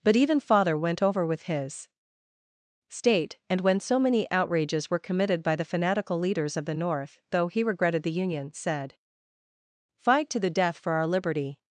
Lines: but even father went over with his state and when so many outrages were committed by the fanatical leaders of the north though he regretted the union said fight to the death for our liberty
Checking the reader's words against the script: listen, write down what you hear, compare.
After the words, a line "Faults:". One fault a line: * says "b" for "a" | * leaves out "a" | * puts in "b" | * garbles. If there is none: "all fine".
but even father went over with his state and when so many outrages were committed by the fanatical leaders of the north though he regretted the union said fight to the death for our liberty
Faults:
all fine